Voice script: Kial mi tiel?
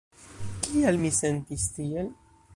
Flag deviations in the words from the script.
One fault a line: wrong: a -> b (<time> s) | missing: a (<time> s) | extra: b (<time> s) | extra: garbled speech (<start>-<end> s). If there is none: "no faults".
extra: sentis (1.2 s)